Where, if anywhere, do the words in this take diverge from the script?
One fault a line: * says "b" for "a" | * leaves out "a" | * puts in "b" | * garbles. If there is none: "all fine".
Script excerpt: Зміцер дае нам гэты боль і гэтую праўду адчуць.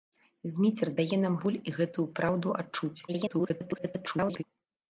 * leaves out "гэты"
* garbles